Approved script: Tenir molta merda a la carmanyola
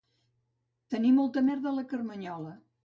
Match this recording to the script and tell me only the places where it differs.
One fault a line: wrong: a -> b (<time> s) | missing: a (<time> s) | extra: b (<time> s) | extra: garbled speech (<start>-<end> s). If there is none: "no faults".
no faults